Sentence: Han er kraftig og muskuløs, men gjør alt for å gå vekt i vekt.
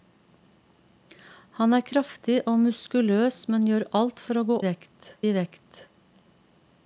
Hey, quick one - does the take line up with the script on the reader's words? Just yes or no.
yes